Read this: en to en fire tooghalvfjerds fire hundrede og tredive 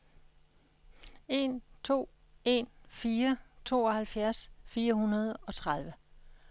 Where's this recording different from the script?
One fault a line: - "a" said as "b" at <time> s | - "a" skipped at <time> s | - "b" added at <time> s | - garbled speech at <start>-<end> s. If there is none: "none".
none